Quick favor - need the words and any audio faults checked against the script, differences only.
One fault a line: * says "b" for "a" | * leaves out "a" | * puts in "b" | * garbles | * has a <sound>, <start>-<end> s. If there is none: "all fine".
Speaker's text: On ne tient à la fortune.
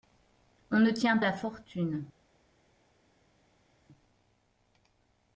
all fine